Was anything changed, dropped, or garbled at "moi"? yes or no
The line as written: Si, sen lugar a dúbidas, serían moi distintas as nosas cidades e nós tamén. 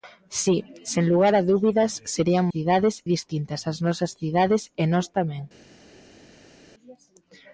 yes